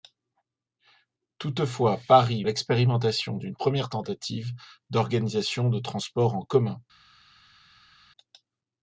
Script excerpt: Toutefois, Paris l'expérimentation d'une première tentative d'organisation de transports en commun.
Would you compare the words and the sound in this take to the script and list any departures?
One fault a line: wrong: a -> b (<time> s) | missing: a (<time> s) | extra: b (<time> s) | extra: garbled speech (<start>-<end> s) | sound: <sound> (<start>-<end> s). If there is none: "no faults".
no faults